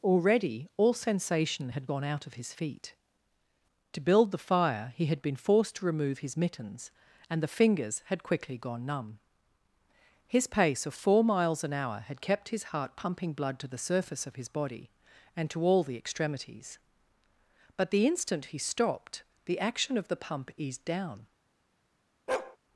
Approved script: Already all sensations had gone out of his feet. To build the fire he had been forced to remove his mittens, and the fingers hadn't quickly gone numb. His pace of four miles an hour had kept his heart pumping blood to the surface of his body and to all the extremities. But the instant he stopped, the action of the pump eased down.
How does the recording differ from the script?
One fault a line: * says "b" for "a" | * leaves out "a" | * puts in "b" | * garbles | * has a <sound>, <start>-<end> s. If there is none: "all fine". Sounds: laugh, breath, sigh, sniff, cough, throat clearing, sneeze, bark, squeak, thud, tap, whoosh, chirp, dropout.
* says "sensation" for "sensations"
* says "had" for "hadn't"
* has a bark, 22.3-22.6 s